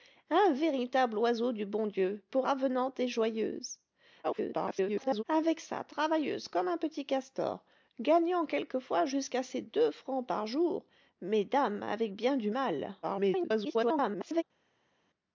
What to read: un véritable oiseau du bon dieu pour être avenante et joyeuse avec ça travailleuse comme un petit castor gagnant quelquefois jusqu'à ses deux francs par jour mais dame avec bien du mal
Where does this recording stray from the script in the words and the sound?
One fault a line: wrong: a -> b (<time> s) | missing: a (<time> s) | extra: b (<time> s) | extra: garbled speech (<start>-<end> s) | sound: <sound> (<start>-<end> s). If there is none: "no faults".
missing: être (2.5 s)
extra: garbled speech (4.2-5.2 s)
extra: garbled speech (13.0-14.4 s)